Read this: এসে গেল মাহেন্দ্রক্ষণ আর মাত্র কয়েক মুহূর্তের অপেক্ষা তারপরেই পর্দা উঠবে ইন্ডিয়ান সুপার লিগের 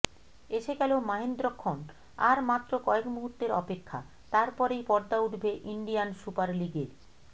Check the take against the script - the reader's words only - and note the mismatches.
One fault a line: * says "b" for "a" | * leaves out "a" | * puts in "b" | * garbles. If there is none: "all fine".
all fine